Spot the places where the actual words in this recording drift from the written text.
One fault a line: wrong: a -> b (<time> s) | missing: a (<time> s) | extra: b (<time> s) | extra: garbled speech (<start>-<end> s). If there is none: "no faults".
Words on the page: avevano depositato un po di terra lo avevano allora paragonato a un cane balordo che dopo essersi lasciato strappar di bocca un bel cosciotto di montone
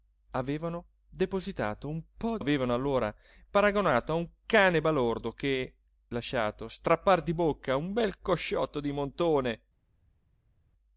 missing: di terra lo (2.4 s)
missing: dopo essersi (5.8 s)